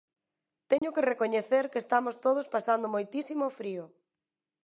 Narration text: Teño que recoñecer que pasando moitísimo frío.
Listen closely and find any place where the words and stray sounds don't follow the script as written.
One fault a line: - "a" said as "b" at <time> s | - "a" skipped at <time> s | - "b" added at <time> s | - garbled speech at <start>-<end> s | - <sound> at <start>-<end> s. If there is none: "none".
- dropout at 0.8-0.8 s
- "estamos todos" added at 1.8 s